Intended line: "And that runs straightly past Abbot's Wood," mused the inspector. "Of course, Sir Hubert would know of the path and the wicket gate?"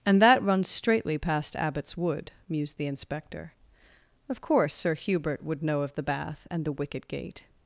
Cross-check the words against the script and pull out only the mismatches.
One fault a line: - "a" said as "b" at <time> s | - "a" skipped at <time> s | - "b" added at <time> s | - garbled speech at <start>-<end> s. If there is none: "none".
- "path" said as "bath" at 6.0 s